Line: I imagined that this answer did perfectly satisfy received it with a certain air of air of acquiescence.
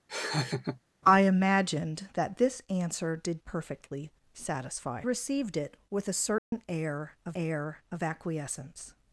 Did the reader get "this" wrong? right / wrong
right